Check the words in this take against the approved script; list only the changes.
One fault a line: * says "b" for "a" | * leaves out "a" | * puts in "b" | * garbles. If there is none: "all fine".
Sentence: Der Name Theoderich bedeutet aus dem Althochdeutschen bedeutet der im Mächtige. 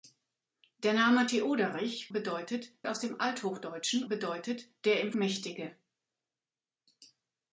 all fine